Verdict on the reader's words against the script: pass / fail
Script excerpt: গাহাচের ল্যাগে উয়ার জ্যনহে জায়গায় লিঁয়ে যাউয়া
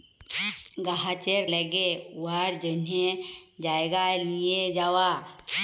pass